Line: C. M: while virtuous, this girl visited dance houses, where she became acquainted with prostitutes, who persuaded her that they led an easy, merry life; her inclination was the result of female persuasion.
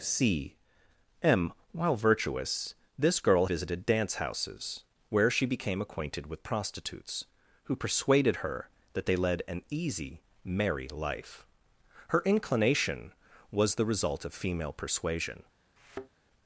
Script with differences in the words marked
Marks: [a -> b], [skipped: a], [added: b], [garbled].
C. M: while virtuous, this girl visited dance houses, where she became acquainted with prostitutes, who persuaded her that they led an easy, merry life; her inclination was the result of female persuasion.